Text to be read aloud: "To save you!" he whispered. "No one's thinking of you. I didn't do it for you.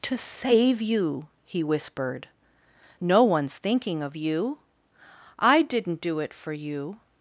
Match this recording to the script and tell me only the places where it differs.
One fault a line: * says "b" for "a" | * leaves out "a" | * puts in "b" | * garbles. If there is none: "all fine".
all fine